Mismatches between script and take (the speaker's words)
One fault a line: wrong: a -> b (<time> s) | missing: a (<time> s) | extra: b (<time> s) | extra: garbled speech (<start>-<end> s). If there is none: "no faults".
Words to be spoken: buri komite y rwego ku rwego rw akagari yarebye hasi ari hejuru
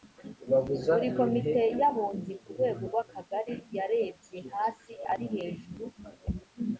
wrong: rwego -> abunzi (1.9 s)